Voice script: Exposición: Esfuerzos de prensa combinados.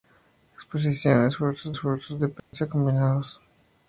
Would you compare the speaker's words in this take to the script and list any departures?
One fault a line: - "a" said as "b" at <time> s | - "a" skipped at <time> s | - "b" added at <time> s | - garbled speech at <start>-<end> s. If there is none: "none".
- "Esfuerzos" added at 1.7 s